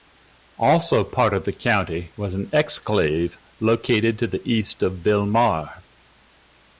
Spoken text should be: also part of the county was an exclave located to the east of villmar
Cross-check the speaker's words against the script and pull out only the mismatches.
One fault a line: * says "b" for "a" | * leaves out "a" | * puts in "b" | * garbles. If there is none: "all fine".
all fine